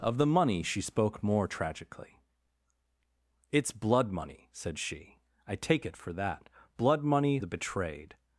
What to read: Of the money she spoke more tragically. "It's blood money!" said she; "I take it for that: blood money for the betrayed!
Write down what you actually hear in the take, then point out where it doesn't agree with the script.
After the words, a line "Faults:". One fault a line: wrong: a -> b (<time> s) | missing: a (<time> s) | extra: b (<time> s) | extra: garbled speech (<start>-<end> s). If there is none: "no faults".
Of the money she spoke more tragically. "It's blood money!" said she; "I take it for that: blood money the betrayed!
Faults:
missing: for (7.4 s)